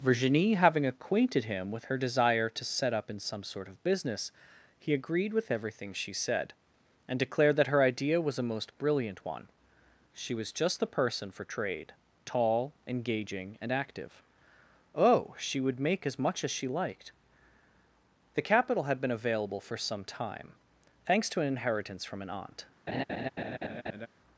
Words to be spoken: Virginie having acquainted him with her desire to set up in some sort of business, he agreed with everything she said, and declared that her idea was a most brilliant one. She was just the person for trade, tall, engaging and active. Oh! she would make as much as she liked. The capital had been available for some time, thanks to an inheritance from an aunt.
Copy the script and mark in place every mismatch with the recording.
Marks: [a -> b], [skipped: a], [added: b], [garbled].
Virginie having acquainted him with her desire to set up in some sort of business, he agreed with everything she said, and declared that her idea was a most brilliant one. She was just the person for trade, tall, engaging and active. Oh! she would make as much as she liked. The capital had been available for some time, thanks to an inheritance from an aunt.